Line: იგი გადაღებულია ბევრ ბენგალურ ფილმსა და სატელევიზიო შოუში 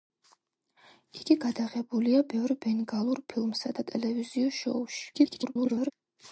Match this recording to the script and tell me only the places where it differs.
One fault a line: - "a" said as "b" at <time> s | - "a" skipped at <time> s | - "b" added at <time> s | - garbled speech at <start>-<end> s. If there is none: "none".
- "და" skipped at 3.8 s
- garbled speech at 5.1-5.9 s